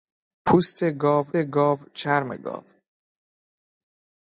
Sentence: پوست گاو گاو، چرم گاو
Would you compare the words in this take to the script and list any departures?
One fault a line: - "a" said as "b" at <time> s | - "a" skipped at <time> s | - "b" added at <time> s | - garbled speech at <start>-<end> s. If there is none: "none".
none